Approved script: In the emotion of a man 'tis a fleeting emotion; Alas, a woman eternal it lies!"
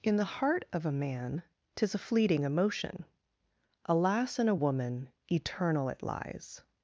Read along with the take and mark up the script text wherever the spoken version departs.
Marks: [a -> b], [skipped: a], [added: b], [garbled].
In the [emotion -> heart] of a man 'tis a fleeting emotion; Alas, [added: in] a woman eternal it lies!"